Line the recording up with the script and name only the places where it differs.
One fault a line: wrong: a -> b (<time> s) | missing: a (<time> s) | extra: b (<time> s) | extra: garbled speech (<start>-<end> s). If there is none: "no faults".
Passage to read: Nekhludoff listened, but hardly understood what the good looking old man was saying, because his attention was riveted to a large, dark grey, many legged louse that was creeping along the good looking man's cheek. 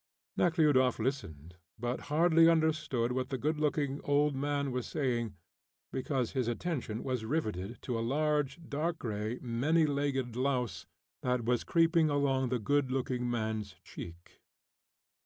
no faults